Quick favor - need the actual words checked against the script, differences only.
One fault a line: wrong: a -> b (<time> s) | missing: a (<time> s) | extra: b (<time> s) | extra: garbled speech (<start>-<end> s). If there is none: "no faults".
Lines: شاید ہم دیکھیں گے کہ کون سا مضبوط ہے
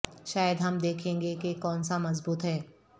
no faults